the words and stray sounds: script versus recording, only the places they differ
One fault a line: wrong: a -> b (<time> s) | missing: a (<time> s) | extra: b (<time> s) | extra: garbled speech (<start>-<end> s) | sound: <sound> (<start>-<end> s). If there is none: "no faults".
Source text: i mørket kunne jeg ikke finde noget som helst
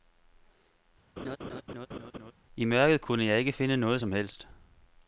sound: laugh (1.2-2.3 s)